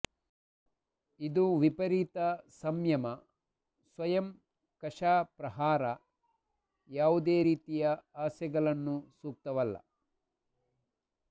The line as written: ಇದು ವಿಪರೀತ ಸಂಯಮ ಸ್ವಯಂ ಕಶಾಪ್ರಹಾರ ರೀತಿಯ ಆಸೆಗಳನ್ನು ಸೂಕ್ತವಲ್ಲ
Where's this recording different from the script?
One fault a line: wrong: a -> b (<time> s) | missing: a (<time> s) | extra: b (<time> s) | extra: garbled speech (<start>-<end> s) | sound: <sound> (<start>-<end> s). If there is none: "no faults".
extra: ಯಾವುದೇ (6.9 s)